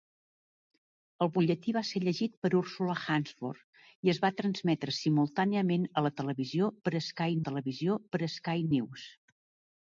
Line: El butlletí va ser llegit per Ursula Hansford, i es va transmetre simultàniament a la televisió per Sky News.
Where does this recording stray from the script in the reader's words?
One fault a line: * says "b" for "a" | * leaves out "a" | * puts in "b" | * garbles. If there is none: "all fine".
* puts in "televisió per Sky"